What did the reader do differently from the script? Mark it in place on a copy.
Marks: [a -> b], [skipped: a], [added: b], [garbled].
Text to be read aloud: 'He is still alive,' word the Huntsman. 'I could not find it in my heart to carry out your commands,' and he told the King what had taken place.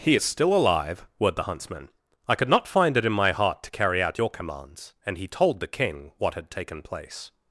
'He is still alive,' word the Huntsman. 'I could not find it in my heart to carry out your commands,' and he told the King what had taken place.